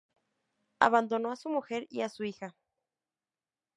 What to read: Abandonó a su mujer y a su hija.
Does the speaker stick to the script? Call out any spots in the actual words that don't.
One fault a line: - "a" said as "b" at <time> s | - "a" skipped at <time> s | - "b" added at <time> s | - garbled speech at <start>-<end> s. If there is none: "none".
none